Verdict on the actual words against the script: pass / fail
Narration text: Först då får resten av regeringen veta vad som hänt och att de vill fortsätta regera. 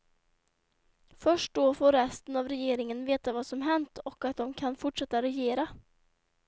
fail